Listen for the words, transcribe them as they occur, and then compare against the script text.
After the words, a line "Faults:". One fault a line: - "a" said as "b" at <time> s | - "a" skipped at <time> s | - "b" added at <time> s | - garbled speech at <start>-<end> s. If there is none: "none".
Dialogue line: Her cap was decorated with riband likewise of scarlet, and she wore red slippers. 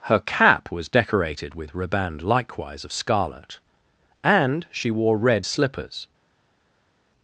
Her cap was decorated with riband likewise of scarlet, and she wore red slippers.
Faults:
none